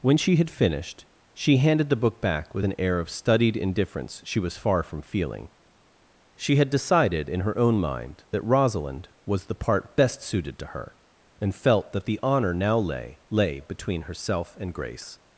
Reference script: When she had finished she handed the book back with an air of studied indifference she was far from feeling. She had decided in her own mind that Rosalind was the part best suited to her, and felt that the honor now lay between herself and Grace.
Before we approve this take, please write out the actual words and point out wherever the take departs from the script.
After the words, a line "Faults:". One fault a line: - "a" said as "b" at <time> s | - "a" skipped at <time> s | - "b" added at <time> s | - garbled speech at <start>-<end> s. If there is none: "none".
When she had finished she handed the book back with an air of studied indifference she was far from feeling. She had decided in her own mind that Rosalind was the part best suited to her, and felt that the honor now lay lay between herself and Grace.
Faults:
- "lay" added at 13.3 s